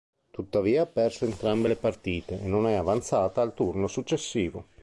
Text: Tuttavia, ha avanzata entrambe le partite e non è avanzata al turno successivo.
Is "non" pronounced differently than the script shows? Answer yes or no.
no